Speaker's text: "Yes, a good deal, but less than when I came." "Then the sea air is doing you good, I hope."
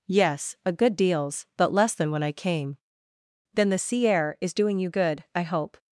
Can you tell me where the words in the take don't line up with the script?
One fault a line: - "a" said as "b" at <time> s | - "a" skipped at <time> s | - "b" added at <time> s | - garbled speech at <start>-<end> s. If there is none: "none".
- "deal" said as "deals" at 0.9 s